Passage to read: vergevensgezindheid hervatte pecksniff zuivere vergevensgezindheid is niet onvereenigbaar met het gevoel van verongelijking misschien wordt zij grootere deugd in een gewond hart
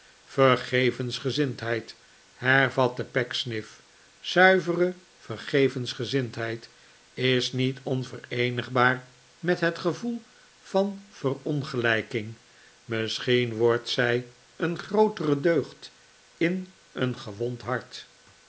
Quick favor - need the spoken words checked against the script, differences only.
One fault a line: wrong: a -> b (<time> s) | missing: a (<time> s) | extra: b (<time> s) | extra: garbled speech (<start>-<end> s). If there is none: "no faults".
extra: een (14.5 s)